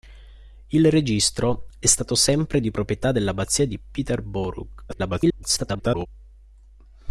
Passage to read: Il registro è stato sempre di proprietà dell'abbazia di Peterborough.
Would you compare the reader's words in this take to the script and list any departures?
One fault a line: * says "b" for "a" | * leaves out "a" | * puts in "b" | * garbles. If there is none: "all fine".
* garbles